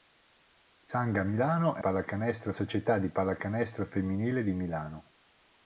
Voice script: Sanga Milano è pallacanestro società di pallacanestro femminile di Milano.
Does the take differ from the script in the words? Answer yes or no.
no